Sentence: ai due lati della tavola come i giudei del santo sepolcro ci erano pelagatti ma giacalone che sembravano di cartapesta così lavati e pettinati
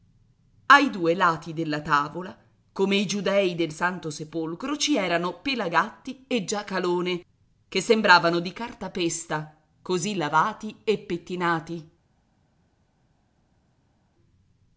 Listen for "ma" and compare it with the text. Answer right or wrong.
wrong